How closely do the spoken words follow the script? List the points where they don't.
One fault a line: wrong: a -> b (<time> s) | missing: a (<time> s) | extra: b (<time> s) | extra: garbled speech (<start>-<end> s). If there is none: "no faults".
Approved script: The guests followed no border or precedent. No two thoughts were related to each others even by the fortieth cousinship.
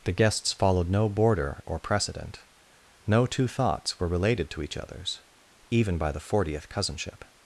no faults